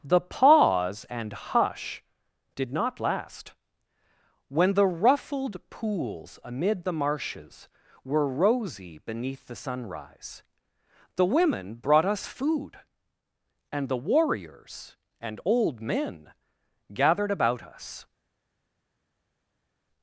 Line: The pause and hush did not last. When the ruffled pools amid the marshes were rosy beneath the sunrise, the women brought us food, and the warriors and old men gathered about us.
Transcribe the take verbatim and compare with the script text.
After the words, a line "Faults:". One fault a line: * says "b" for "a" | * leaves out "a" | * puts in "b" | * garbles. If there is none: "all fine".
The pause and hush did not last. When the ruffled pools amid the marshes were rosy beneath the sunrise, the women brought us food, and the warriors and old men gathered about us.
Faults:
all fine